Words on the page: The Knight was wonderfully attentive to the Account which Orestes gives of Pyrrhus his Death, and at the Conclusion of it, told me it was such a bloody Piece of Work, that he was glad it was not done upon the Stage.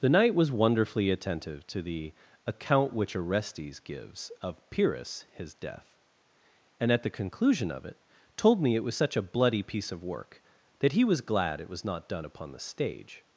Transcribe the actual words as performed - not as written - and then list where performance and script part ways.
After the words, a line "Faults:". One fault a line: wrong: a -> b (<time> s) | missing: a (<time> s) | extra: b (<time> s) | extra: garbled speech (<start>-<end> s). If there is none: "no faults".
The Knight was wonderfully attentive to the Account which Orestes gives of Pyrrhus his Death, and at the Conclusion of it, told me it was such a bloody Piece of Work, that he was glad it was not done upon the Stage.
Faults:
no faults